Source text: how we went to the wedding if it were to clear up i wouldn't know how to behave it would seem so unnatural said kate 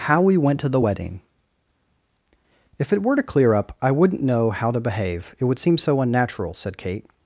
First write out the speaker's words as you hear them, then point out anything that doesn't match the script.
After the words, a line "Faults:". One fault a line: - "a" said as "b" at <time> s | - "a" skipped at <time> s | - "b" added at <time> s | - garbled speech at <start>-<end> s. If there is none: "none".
how we went to the wedding if it were to clear up i wouldn't know how to behave it would seem so unnatural said kate
Faults:
none